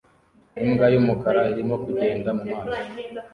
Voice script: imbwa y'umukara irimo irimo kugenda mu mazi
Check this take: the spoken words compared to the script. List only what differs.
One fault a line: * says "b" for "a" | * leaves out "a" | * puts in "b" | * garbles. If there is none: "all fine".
* leaves out "irimo"